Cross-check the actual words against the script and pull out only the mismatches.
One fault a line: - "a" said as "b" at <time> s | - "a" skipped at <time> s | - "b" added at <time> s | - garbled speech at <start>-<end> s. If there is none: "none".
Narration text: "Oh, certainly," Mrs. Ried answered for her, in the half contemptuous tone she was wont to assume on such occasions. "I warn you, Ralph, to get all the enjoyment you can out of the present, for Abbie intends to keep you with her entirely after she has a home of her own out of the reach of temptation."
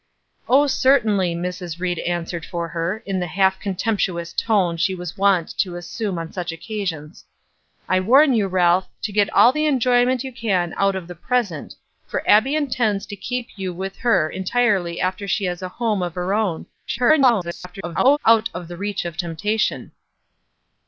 - garbled speech at 16.9-18.2 s